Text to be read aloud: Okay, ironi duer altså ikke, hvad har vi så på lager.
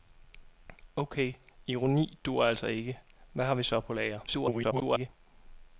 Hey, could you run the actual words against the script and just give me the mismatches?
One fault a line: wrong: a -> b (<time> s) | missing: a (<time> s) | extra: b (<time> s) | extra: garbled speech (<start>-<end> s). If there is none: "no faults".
extra: garbled speech (4.3-5.1 s)